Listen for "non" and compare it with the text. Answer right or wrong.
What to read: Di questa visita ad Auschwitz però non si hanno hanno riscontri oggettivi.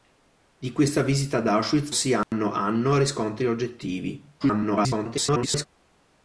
wrong